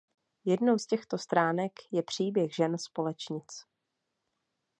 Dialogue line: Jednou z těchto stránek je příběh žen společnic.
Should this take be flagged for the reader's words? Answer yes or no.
no